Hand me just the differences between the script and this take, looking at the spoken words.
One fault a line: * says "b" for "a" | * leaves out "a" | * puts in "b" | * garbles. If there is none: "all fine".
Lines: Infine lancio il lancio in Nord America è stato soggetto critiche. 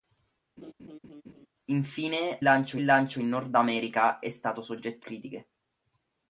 all fine